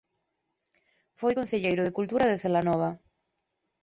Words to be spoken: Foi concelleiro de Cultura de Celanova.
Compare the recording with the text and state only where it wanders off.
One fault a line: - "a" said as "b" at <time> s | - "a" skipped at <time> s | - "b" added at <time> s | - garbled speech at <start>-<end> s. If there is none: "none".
none